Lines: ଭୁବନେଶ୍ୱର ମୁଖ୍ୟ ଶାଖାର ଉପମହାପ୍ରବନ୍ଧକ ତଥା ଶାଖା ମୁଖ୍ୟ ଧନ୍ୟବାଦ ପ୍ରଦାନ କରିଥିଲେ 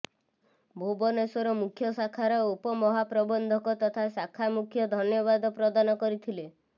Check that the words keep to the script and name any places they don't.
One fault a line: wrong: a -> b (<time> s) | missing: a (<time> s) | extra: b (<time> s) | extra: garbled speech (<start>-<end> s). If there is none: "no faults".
no faults